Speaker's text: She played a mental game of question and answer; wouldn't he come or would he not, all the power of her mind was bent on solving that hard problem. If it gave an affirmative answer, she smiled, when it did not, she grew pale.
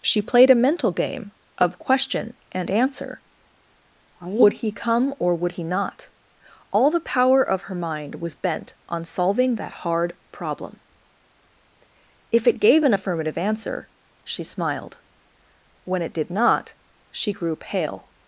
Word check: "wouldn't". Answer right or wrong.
wrong